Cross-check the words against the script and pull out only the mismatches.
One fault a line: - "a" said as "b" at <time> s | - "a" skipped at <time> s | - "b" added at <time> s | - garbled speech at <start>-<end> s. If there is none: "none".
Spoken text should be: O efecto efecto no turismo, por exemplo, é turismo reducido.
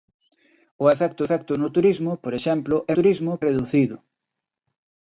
none